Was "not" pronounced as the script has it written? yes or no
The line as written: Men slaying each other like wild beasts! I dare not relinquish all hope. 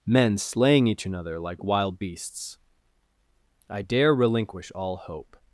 no